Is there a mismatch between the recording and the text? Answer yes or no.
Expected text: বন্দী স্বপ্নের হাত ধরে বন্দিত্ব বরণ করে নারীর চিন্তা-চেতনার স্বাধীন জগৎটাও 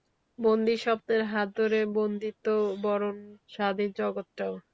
yes